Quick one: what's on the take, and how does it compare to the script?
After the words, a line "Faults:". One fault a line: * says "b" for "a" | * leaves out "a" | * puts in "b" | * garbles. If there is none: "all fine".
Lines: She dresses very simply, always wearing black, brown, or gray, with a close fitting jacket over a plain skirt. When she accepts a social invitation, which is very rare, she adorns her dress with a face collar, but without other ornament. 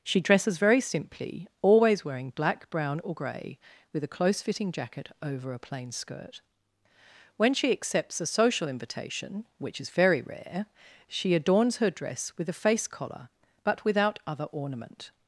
She dresses very simply, always wearing black, brown, or gray, with a close fitting jacket over a plain skirt. When she accepts a social invitation, which is very rare, she adorns her dress with a face collar, but without other ornament.
Faults:
all fine